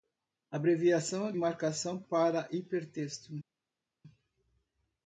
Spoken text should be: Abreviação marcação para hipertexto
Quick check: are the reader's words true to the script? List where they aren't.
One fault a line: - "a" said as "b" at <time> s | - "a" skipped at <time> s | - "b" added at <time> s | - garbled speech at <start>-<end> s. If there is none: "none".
none